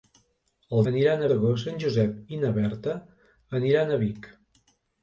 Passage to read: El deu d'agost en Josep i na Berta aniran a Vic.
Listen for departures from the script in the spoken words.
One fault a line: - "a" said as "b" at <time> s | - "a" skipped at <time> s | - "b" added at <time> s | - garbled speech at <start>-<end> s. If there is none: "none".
- "deu" said as "aniran" at 0.9 s